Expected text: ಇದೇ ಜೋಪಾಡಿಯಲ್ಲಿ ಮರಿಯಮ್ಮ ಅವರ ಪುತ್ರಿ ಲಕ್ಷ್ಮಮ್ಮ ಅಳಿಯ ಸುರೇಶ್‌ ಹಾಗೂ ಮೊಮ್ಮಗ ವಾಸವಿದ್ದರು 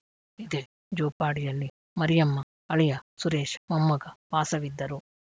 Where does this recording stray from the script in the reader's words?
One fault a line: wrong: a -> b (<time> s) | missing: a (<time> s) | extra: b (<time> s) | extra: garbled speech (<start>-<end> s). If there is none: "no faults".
missing: ಅವರ ಪುತ್ರಿ ಲಕ್ಷ್ಮಮ್ಮ (2.4 s)
missing: ಹಾಗೂ (3.6 s)